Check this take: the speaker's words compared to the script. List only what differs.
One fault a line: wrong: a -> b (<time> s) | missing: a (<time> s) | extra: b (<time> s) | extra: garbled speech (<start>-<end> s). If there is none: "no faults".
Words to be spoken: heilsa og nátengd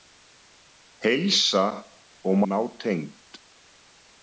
no faults